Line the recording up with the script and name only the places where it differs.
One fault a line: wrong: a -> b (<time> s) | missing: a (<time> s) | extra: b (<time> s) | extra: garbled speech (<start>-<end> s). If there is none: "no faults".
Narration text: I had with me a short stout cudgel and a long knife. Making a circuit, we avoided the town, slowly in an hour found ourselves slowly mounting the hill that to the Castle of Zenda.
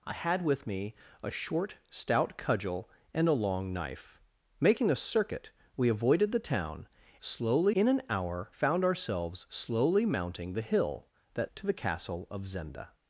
no faults